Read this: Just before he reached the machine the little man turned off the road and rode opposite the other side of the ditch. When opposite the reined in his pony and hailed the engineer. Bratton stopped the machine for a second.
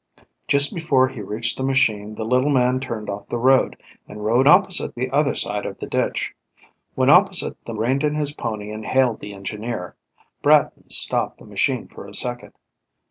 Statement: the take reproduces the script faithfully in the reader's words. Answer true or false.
true